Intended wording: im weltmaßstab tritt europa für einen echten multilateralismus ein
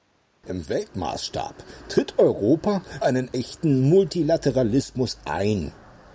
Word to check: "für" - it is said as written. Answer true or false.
false